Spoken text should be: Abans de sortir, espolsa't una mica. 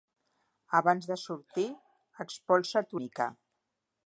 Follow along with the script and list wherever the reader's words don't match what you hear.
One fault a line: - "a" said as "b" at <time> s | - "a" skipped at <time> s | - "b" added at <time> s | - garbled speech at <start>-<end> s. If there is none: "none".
- "una" skipped at 3.0 s